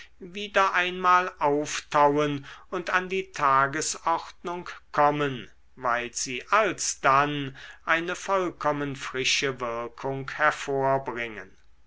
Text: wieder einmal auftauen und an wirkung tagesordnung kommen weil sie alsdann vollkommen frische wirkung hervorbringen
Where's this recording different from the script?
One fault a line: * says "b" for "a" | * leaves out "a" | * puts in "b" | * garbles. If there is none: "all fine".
* says "die" for "wirkung"
* puts in "eine"